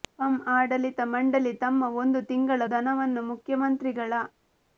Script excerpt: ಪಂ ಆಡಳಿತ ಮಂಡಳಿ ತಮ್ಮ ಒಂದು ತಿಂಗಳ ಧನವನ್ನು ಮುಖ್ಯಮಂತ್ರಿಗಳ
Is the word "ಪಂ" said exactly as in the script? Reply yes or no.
yes